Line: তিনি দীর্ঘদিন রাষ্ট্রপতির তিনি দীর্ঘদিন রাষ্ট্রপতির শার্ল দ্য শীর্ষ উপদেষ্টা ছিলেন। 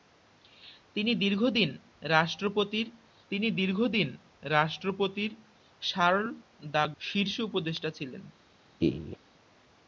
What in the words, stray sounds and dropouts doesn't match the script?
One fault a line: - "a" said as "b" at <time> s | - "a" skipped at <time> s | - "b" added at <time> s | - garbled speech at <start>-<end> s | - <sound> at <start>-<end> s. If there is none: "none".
- laugh at 8.8-9.2 s